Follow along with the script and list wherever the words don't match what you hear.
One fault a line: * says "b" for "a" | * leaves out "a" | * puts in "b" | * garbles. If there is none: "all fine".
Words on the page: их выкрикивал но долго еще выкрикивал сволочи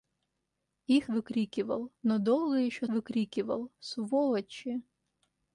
all fine